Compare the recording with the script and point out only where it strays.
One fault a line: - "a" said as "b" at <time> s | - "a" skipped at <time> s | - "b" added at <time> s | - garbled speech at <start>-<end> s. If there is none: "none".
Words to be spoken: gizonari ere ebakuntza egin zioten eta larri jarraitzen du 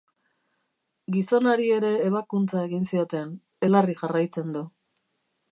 - "eta" skipped at 3.4 s